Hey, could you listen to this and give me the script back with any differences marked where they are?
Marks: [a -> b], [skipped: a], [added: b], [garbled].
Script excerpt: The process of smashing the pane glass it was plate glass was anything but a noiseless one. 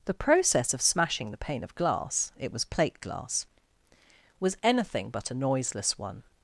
The process of smashing the pane [added: of] glass it was plate glass was anything but a noiseless one.